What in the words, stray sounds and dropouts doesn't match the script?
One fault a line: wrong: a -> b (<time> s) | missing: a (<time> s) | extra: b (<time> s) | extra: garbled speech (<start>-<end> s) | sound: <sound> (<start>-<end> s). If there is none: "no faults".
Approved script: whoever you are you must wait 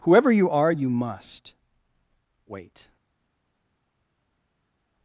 no faults